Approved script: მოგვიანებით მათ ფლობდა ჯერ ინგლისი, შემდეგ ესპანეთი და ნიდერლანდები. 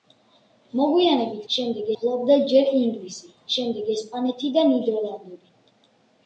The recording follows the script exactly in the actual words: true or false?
false